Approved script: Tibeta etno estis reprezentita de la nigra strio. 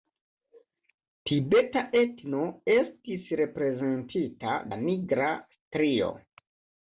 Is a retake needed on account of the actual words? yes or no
yes